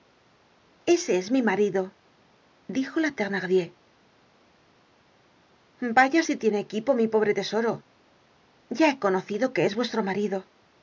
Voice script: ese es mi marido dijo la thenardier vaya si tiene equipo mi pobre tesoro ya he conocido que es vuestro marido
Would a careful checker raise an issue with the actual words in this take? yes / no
no